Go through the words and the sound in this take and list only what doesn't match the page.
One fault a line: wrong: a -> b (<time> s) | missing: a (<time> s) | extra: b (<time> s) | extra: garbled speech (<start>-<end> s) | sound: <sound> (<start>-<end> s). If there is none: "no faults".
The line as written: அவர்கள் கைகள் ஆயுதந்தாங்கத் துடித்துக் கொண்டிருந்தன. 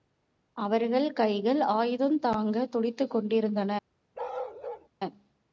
sound: bark (4.1-4.9 s)